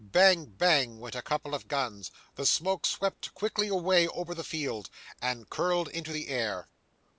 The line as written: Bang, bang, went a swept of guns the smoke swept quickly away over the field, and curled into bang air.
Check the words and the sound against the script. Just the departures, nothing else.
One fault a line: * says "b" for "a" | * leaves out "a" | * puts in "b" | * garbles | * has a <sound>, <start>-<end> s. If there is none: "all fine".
* says "couple" for "swept"
* says "the" for "bang"